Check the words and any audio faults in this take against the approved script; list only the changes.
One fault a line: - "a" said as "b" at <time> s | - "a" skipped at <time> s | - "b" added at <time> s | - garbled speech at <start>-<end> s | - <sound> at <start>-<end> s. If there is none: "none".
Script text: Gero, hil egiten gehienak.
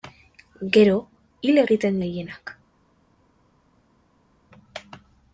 none